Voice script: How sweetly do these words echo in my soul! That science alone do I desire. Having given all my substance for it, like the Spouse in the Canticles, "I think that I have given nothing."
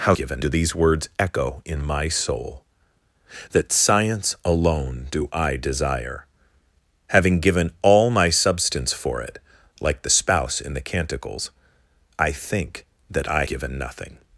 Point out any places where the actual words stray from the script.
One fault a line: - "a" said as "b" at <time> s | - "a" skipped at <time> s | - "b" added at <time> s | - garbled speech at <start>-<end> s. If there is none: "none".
- "sweetly" said as "given" at 0.1 s
- "have" skipped at 13.4 s